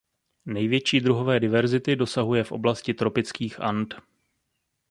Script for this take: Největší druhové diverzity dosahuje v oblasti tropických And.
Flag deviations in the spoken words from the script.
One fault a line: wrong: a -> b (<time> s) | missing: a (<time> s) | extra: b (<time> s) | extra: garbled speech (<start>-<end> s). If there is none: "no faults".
no faults